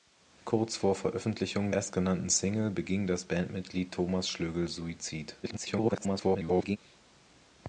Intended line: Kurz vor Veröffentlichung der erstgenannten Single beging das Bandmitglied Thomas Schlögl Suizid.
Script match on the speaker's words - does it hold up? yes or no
no